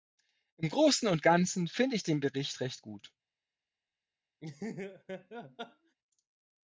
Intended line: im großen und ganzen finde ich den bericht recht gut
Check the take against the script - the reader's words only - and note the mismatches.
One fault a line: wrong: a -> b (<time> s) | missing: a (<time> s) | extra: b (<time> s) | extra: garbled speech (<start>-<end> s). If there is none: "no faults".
no faults